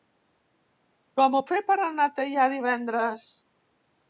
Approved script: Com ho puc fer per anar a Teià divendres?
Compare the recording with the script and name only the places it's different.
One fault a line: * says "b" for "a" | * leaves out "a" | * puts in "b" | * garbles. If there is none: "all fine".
* leaves out "puc"